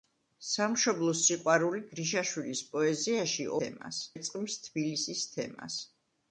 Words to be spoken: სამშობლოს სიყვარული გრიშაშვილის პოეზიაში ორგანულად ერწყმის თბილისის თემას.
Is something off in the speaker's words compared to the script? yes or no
yes